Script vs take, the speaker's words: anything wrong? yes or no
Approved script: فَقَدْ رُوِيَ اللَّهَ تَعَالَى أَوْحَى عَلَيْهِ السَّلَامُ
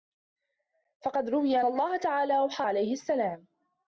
no